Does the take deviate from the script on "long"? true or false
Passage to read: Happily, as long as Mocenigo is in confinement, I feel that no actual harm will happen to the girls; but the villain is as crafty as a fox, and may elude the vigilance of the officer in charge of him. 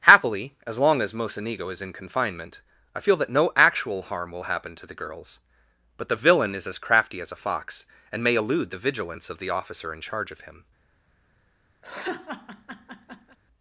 false